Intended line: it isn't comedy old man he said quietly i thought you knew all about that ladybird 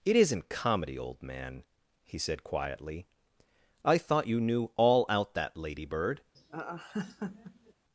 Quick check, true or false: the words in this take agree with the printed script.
false